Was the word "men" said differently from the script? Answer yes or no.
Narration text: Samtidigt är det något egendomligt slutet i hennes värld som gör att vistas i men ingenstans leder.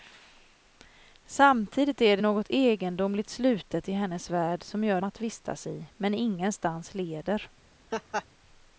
no